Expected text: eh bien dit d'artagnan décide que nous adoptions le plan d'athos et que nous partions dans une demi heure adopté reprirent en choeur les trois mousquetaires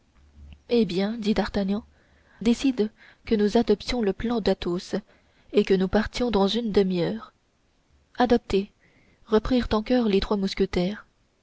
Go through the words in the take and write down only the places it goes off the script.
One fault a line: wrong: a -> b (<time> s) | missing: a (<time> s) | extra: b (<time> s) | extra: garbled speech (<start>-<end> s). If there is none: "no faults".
no faults